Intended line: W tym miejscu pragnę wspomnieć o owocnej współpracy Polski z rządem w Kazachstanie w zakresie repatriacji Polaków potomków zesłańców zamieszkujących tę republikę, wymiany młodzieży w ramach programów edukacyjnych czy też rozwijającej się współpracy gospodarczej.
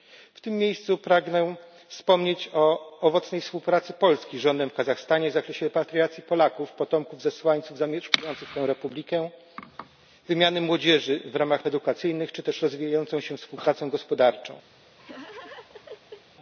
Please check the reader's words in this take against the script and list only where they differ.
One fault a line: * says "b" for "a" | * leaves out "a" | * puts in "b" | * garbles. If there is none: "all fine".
* leaves out "programów"